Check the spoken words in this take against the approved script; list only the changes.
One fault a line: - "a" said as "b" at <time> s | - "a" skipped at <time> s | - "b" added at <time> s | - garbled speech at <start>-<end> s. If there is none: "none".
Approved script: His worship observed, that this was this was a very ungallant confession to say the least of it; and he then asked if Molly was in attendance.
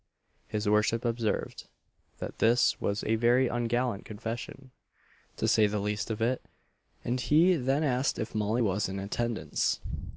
- "this was" skipped at 3.0 s